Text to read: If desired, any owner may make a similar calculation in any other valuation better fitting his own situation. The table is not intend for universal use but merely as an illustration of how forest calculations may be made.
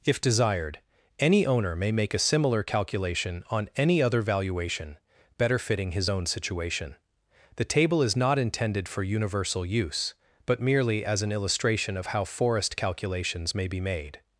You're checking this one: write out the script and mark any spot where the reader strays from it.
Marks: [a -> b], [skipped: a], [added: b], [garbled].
If desired, any owner may make a similar calculation [in -> on] any other valuation better fitting his own situation. The table is not [intend -> intended] for universal use but merely as an illustration of how forest calculations may be made.